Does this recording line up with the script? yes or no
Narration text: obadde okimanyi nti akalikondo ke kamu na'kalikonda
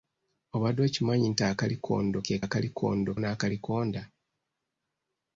no